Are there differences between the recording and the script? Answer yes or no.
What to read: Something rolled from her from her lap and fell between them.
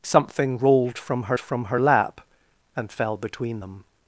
no